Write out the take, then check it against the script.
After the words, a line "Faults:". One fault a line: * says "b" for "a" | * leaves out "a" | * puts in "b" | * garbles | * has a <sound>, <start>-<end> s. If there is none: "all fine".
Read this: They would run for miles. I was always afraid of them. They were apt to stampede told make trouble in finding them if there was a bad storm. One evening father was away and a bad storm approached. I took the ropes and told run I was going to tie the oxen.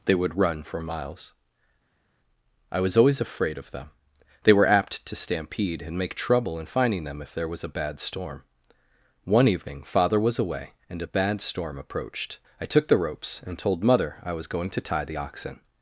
They would run for miles. I was always afraid of them. They were apt to stampede and make trouble in finding them if there was a bad storm. One evening father was away and a bad storm approached. I took the ropes and told mother I was going to tie the oxen.
Faults:
* says "and" for "told"
* says "mother" for "run"